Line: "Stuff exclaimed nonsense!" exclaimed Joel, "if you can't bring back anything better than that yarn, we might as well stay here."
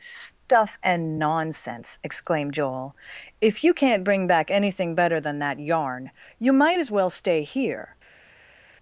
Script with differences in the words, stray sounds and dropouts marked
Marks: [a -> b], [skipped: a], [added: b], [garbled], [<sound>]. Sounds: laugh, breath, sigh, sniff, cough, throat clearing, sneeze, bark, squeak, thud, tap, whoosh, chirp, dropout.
"Stuff [exclaimed -> and] nonsense!" exclaimed Joel, "if you can't bring back anything better than that yarn, [we -> you] might as well stay here."